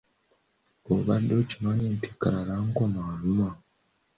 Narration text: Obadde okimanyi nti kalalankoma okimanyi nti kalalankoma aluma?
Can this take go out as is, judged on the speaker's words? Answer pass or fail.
fail